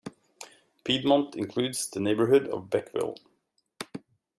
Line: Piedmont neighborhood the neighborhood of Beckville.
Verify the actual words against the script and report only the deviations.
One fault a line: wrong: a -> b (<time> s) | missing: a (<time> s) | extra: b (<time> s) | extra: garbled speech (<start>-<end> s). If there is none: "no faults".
wrong: neighborhood -> includes (1.4 s)